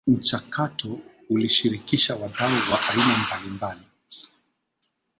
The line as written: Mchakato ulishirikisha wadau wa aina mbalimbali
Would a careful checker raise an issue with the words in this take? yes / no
no